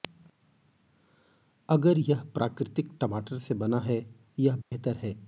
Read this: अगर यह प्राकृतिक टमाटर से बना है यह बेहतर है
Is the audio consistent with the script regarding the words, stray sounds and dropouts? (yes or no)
no